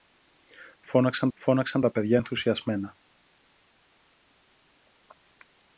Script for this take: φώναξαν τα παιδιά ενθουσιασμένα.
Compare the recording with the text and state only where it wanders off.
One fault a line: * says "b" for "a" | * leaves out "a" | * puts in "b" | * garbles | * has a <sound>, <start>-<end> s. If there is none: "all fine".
* puts in "φώναξαν"